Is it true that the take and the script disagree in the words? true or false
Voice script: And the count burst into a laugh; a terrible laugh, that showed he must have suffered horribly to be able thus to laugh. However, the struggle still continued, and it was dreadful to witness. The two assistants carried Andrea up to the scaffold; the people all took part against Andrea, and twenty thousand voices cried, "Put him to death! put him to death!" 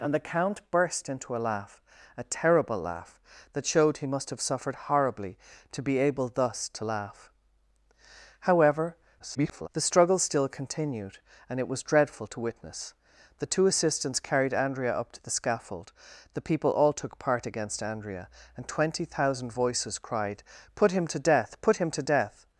true